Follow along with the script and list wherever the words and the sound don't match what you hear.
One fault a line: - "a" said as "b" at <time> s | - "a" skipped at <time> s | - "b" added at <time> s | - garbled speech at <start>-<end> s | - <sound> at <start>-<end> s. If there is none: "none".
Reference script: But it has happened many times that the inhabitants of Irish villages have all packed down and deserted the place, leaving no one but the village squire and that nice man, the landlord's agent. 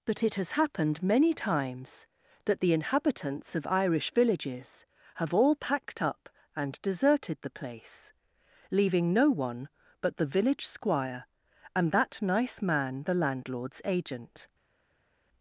- "down" said as "up" at 6.0 s